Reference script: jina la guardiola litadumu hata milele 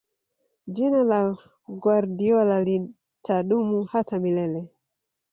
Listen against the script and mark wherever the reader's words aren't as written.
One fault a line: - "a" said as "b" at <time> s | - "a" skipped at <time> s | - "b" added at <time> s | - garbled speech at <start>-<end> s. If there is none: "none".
none